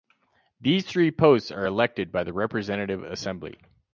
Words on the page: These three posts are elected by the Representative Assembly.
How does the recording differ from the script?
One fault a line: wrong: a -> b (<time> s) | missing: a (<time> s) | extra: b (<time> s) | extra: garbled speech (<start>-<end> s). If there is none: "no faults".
no faults